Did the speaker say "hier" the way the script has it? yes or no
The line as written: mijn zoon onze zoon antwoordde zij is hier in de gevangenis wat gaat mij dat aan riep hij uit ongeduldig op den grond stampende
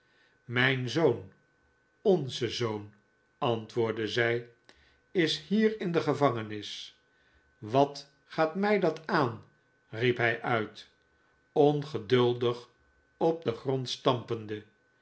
yes